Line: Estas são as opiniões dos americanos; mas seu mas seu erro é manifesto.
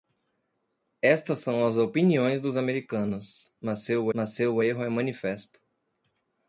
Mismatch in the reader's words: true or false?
false